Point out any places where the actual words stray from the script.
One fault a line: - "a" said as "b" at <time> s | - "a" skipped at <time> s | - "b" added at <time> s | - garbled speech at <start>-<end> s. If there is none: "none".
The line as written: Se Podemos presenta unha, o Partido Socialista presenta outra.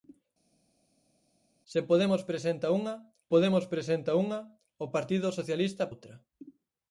- "Podemos presenta unha" added at 3.3 s
- "presenta" skipped at 5.8 s